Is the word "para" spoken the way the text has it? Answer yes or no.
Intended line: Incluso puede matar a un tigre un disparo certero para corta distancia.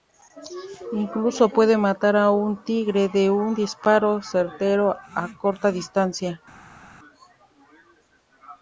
no